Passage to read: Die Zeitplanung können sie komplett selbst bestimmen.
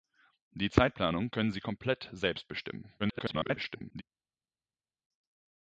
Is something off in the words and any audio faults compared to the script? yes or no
yes